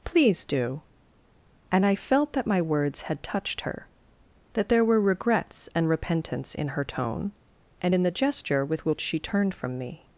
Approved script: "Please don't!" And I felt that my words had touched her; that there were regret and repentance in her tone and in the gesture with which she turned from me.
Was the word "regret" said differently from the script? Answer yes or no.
yes